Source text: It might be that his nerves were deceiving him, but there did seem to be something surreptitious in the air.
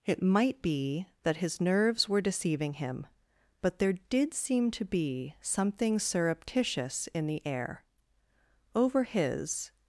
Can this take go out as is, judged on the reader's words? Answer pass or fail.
fail